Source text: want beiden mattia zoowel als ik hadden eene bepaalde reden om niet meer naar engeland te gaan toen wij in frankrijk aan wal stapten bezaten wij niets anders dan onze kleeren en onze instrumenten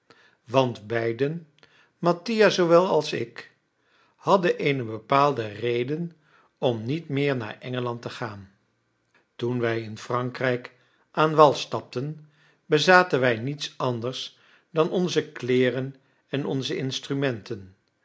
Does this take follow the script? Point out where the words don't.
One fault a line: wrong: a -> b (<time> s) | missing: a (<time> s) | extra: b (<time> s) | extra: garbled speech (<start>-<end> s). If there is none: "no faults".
no faults